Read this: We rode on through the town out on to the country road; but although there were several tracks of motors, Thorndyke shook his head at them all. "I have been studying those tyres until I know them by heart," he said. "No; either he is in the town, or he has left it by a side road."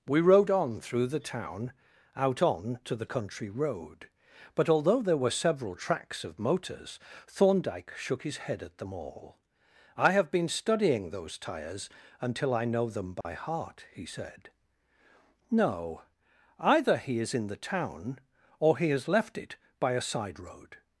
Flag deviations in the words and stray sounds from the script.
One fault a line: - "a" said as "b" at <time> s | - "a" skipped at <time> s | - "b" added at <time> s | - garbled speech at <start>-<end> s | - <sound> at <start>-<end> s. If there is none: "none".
- dropout at 13.2-13.3 s